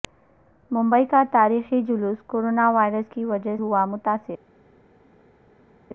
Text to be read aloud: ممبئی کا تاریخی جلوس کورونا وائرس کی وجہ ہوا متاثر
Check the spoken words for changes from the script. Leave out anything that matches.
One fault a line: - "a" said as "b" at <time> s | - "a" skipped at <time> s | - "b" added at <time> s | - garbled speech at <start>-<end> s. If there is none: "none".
none